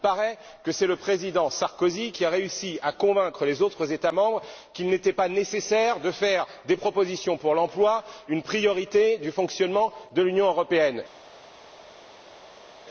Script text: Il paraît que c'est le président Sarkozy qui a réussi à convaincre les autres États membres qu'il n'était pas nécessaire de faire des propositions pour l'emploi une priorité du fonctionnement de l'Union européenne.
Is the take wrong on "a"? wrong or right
right